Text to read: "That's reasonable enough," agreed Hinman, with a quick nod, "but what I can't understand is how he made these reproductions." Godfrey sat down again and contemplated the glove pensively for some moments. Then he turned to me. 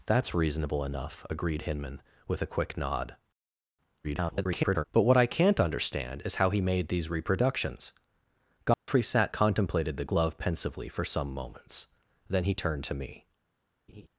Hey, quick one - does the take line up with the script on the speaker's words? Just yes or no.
no